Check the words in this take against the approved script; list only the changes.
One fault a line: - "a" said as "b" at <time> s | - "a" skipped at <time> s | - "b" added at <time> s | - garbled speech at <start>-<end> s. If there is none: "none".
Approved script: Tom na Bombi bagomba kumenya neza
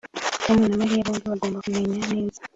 - "Mariya" added at 0.8 s